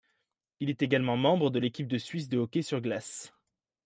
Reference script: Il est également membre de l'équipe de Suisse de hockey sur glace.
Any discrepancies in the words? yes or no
no